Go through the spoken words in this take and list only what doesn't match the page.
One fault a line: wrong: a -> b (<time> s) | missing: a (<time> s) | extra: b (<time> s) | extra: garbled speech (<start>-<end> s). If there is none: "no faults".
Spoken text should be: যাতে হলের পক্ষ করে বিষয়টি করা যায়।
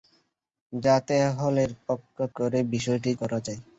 no faults